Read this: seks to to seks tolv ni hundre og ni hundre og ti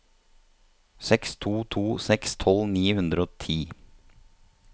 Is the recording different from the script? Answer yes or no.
yes